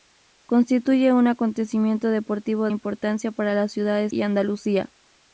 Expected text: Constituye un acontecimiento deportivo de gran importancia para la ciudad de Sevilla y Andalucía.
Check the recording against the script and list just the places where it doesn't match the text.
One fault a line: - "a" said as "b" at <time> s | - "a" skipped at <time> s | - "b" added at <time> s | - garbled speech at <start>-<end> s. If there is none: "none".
- "de gran" skipped at 2.7 s
- "Sevilla" skipped at 4.1 s